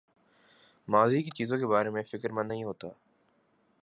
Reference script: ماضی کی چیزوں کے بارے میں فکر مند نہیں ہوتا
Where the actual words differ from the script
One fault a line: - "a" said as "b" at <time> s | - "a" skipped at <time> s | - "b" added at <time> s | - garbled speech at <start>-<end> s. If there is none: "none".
none